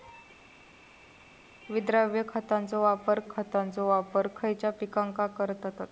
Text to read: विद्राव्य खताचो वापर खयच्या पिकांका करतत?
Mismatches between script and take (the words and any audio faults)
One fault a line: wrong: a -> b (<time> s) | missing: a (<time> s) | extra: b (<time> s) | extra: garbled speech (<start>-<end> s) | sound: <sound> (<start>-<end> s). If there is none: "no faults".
extra: खताचो वापर (3.3 s)